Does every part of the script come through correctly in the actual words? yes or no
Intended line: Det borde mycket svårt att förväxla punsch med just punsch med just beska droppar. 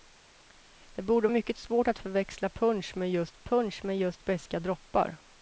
yes